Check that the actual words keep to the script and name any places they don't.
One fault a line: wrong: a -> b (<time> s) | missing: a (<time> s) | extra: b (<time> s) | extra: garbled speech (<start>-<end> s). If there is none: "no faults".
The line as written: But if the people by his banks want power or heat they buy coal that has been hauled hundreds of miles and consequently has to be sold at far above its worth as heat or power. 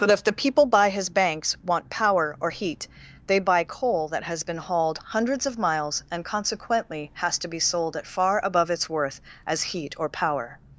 no faults